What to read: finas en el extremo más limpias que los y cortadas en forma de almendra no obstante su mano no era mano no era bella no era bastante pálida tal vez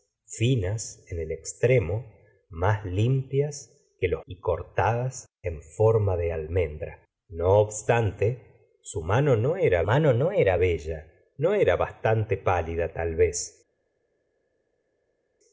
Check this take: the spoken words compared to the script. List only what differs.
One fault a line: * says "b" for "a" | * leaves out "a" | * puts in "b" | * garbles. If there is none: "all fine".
all fine